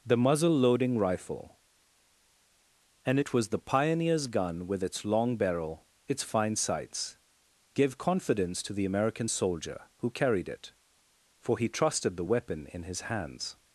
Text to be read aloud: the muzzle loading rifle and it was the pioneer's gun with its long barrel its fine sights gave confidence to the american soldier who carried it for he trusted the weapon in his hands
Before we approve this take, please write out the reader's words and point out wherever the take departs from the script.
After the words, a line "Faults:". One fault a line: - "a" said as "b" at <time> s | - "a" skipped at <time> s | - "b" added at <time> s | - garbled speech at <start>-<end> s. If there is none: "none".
the muzzle loading rifle and it was the pioneer's gun with its long barrel its fine sights gave confidence to the american soldier who carried it for he trusted the weapon in his hands
Faults:
none